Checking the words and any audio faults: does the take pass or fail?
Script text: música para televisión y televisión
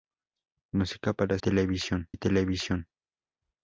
pass